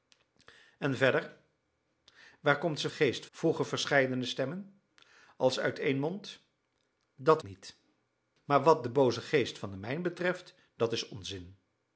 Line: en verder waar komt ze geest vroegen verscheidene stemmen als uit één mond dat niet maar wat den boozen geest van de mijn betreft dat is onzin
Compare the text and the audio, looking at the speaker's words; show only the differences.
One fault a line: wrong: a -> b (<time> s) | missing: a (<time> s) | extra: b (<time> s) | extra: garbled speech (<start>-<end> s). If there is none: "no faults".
no faults